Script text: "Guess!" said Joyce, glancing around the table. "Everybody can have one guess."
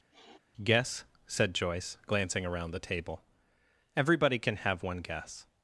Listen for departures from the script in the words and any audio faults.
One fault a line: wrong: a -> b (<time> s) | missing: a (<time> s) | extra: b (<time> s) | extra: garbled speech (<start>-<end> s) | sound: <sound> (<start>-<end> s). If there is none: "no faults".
sound: sniff (0.1-0.4 s)